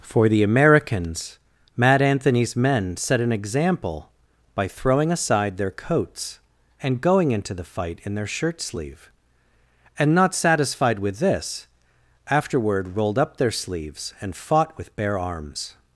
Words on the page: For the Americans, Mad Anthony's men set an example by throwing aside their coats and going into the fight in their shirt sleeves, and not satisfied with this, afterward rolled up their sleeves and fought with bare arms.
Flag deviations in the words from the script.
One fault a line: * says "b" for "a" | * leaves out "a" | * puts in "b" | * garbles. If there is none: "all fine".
* says "sleeve" for "sleeves"